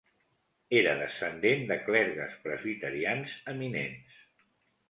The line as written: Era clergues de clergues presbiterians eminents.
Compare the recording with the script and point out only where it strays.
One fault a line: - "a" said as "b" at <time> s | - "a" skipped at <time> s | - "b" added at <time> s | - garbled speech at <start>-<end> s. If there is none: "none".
- "clergues" said as "descendent" at 1.0 s